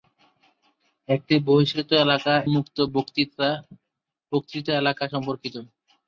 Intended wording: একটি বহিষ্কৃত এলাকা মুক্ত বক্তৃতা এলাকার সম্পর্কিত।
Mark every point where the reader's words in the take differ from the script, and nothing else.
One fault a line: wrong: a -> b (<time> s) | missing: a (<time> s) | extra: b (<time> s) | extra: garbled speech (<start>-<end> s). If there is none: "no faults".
no faults